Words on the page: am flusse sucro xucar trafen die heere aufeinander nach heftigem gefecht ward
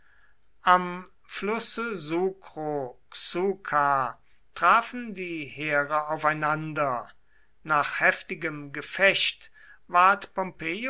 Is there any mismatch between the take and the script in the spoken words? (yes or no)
no